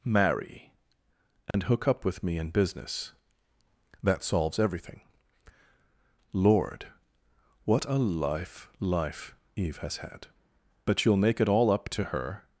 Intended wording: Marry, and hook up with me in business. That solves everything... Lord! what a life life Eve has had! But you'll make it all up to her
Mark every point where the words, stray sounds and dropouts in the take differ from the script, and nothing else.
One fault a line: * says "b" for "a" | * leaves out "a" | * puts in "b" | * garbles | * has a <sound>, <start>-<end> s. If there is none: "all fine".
* has a dropout, 1.5-1.5 s